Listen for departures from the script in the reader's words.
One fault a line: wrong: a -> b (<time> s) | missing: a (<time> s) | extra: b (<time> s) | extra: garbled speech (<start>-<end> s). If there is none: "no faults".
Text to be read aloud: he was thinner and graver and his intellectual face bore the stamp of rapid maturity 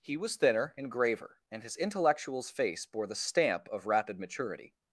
wrong: intellectual -> intellectuals (1.8 s)